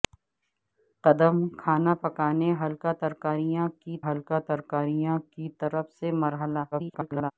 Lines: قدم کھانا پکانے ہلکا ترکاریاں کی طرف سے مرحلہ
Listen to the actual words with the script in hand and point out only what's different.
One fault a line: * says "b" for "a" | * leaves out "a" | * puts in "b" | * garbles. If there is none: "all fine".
* puts in "ہلکا ترکاریاں کی"
* garbles